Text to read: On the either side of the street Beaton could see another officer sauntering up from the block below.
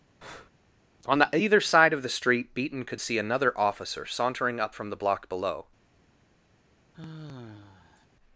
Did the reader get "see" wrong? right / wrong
right